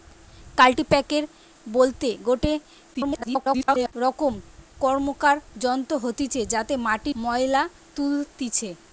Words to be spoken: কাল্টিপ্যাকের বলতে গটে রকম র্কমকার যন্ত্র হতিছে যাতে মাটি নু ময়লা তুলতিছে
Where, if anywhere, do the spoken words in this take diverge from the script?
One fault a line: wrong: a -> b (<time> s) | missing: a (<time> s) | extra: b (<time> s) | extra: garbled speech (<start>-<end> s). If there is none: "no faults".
extra: garbled speech (2.9-3.9 s)
missing: নু (7.1 s)